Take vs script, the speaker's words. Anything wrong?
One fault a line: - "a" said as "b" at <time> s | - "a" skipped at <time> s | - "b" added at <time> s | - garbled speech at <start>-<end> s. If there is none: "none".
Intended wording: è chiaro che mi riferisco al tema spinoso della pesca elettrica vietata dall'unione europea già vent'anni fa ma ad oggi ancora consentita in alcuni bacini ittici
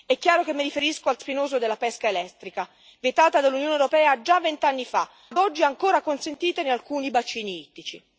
- "tema" skipped at 1.2 s
- "ma" skipped at 5.1 s